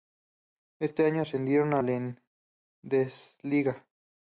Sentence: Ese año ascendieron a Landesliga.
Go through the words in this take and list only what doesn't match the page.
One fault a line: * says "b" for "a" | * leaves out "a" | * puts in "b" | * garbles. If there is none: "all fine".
all fine